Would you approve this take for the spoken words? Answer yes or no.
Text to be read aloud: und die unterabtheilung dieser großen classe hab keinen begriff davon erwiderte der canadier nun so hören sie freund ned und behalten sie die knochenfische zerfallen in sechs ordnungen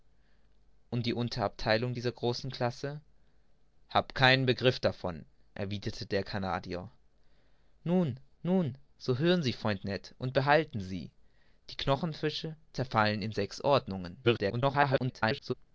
no